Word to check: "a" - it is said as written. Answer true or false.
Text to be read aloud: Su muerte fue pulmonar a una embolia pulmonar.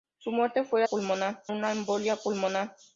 true